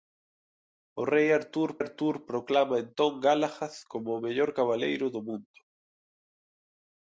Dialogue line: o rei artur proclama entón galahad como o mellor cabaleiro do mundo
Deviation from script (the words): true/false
true